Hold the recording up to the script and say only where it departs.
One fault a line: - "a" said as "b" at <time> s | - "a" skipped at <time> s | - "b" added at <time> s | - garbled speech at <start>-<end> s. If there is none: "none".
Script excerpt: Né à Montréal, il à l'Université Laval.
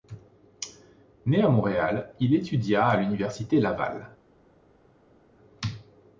- "étudia" added at 2.3 s